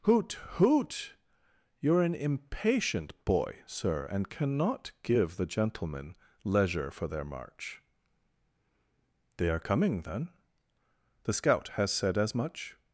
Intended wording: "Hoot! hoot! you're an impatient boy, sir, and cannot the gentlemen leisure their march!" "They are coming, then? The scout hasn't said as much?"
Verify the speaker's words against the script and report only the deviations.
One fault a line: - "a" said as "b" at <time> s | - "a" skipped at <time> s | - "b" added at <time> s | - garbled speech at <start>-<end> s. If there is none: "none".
- "give" added at 5.0 s
- "for" added at 6.9 s
- "hasn't" said as "has" at 11.7 s